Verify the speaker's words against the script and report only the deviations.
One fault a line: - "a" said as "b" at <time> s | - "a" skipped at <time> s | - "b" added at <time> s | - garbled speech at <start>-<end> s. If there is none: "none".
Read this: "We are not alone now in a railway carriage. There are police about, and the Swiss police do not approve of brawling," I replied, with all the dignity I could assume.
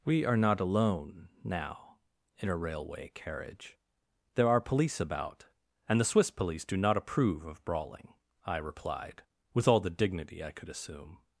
none